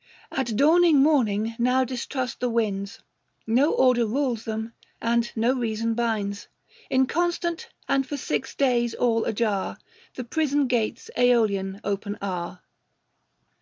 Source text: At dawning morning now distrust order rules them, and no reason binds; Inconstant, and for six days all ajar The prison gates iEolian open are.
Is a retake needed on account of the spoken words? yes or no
yes